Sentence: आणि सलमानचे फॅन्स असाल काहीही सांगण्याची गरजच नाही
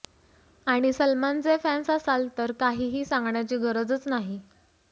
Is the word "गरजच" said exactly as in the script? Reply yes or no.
yes